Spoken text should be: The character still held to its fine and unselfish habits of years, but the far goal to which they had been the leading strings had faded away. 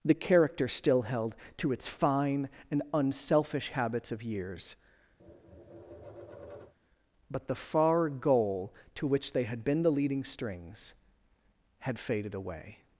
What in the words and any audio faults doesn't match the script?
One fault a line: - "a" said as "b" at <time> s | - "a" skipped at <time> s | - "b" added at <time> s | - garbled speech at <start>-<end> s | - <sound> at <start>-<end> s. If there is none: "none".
- tap at 5.2-6.7 s